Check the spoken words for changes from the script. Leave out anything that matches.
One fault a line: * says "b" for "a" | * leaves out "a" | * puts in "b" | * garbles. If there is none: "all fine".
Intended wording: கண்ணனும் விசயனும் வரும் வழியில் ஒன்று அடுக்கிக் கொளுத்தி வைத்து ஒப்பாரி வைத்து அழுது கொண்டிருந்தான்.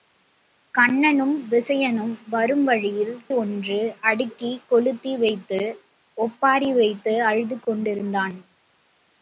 all fine